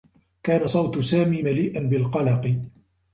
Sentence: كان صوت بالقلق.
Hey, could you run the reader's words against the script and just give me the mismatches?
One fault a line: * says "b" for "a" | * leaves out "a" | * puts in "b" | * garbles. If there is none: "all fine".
* puts in "سامي مليئا"